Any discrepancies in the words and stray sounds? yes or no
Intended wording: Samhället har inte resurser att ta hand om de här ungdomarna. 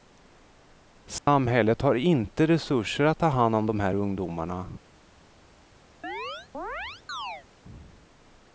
yes